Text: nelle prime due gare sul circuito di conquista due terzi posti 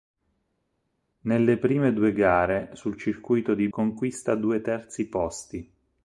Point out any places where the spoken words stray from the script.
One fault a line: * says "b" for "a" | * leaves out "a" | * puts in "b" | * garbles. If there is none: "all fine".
all fine